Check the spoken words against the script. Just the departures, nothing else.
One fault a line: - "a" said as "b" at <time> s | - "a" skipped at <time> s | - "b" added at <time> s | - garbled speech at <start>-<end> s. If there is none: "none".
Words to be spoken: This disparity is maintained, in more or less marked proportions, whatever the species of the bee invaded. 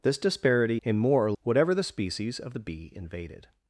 - "is maintained" skipped at 0.8 s
- "less marked proportions" skipped at 1.3 s